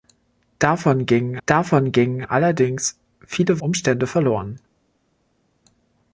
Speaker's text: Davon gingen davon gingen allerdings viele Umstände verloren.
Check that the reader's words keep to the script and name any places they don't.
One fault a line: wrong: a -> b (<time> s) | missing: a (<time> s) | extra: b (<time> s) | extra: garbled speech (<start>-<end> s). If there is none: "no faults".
no faults